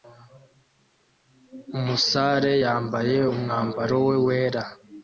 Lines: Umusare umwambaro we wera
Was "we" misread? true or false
false